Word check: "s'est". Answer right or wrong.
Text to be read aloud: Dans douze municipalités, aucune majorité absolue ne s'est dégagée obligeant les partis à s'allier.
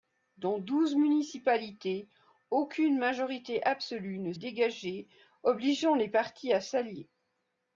wrong